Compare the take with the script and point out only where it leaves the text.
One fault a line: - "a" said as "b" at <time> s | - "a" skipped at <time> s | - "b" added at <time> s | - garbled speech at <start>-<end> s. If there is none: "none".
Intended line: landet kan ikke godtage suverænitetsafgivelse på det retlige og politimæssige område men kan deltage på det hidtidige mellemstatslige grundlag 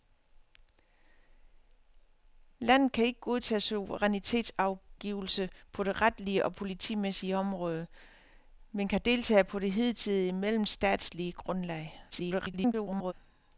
- garbled speech at 12.1-13.1 s